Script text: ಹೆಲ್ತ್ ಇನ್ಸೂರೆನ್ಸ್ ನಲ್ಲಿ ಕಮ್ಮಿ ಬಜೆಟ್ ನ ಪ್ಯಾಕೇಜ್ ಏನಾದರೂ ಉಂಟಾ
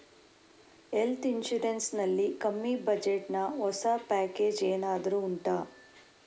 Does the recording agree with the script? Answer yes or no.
no